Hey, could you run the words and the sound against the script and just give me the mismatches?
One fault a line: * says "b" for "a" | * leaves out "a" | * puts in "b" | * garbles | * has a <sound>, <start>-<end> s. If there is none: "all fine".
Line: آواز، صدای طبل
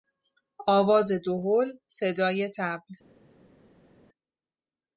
* puts in "دهل"